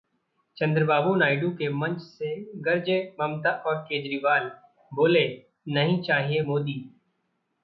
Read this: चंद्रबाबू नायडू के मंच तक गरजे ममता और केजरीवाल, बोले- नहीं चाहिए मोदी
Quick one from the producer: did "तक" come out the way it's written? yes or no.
no